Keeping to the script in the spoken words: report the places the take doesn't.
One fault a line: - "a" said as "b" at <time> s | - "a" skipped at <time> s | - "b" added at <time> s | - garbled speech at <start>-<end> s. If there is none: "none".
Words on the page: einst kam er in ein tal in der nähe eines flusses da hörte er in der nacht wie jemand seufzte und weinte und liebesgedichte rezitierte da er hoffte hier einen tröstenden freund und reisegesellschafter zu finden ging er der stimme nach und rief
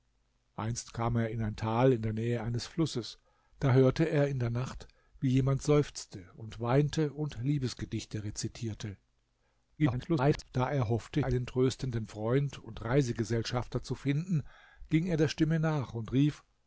- garbled speech at 9.8-10.5 s
- "hier" skipped at 11.2 s